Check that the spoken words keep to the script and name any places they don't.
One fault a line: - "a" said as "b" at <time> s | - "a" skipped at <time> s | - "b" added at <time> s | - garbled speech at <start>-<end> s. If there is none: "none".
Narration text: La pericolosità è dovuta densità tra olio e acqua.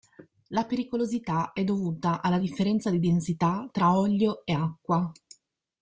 - "alla differenza di" added at 2.2 s